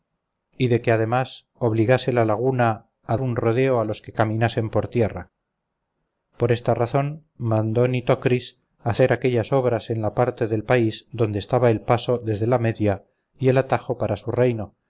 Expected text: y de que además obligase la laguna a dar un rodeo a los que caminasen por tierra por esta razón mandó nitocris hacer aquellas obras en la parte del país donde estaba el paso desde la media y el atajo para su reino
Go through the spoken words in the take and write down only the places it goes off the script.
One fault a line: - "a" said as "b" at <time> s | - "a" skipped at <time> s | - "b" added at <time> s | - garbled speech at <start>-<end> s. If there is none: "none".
- "dar" skipped at 3.2 s